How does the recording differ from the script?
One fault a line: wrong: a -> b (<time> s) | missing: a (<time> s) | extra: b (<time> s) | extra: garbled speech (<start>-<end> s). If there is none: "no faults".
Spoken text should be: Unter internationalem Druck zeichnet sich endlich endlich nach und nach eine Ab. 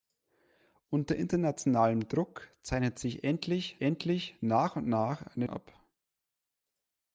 no faults